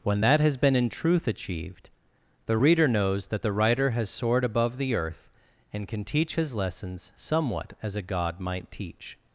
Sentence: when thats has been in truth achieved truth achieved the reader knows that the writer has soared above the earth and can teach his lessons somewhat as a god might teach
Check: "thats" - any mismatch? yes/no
yes